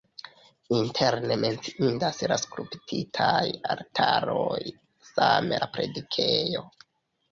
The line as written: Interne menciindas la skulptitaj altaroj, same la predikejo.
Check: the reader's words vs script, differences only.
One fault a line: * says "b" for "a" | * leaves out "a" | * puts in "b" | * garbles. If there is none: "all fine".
all fine